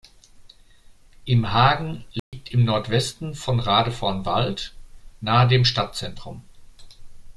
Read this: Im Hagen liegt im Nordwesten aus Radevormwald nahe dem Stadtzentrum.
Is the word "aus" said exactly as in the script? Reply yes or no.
no